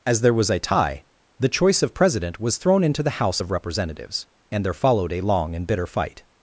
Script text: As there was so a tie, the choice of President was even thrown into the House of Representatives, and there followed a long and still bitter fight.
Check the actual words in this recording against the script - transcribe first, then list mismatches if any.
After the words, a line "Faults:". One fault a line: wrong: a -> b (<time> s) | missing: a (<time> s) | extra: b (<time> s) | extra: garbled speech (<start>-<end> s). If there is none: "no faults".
As there was a tie, the choice of President was thrown into the House of Representatives, and there followed a long and bitter fight.
Faults:
missing: so (0.5 s)
missing: even (2.6 s)
missing: still (5.7 s)